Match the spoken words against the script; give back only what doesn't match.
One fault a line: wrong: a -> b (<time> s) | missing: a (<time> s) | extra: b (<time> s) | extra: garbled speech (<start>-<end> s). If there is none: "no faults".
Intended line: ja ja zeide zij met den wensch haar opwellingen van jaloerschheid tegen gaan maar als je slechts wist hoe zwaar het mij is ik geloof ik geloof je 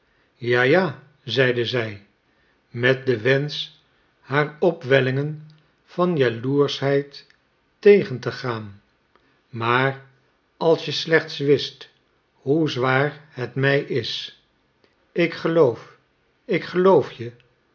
extra: te (8.2 s)